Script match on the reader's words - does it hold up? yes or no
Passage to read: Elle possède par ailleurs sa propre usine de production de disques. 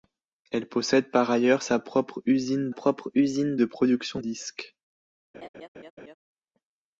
no